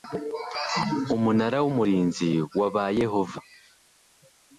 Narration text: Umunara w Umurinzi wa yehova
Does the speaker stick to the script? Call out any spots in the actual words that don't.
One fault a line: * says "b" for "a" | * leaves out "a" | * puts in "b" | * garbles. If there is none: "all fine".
* puts in "ba"